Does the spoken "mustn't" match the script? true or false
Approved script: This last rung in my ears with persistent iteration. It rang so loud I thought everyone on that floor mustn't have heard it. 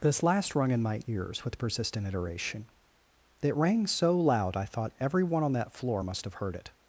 false